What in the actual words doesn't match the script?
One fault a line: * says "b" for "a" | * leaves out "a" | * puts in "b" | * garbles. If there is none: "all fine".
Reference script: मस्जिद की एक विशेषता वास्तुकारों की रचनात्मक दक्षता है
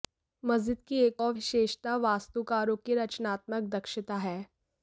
* puts in "और"